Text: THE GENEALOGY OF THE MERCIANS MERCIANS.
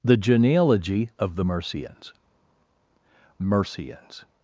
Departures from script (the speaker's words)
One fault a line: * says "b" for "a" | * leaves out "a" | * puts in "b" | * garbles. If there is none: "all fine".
all fine